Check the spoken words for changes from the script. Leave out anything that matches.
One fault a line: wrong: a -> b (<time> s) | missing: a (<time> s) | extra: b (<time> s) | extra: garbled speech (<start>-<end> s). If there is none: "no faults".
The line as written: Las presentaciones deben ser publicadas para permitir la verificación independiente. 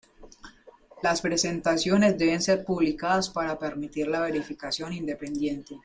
no faults